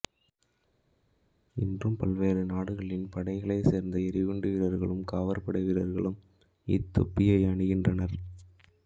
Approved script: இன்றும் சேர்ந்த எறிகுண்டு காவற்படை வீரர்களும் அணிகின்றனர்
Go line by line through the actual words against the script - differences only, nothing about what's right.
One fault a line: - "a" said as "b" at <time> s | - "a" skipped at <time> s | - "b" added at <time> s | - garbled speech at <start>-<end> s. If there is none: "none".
- "பல்வேறு நாடுகளின் படைகளைச்" added at 1.9 s
- "வீரர்களும்" added at 4.5 s
- "இத்தொப்பியை" added at 6.7 s